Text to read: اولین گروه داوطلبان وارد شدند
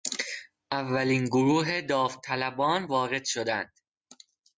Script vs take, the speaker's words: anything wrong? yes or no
no